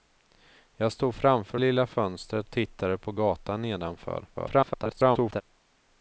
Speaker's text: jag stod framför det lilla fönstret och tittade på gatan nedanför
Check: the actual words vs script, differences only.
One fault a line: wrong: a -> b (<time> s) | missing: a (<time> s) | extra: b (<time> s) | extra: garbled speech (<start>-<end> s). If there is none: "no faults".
missing: det (1.6 s)
missing: och (2.5 s)
extra: garbled speech (4.3-5.4 s)